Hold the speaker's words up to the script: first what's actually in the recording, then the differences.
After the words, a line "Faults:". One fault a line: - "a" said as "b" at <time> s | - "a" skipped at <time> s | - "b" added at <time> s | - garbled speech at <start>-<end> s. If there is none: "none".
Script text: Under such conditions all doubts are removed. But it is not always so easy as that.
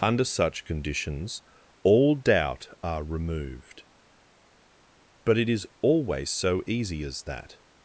Under such conditions all doubt are removed. But it is always so easy as that.
Faults:
- "doubts" said as "doubt" at 2.1 s
- "not" skipped at 5.7 s